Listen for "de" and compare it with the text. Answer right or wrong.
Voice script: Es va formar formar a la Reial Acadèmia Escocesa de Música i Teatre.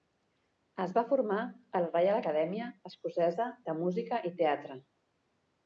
right